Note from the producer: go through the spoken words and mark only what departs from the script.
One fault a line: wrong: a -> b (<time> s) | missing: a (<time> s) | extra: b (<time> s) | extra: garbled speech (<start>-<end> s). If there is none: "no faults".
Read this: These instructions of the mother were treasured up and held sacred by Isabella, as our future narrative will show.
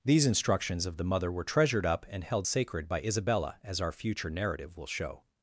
no faults